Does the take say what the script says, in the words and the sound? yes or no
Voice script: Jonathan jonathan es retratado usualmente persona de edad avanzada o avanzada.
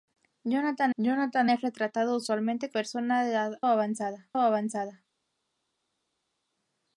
yes